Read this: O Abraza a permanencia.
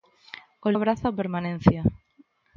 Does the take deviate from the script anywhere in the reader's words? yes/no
no